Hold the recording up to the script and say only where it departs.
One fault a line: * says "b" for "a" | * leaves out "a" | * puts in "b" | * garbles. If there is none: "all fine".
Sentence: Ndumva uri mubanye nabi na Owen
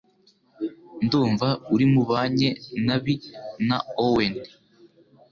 all fine